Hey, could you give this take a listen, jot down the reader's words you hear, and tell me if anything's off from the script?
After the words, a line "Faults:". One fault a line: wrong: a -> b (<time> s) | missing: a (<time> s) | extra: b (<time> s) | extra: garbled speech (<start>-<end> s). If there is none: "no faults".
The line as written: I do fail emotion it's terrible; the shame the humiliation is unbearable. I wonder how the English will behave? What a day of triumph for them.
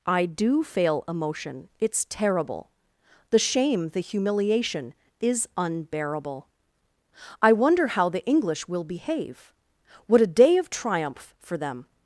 I do fail emotion it's terrible; the shame the humiliation is unbearable. I wonder how the English will behave? What a day of triumph for them.
Faults:
no faults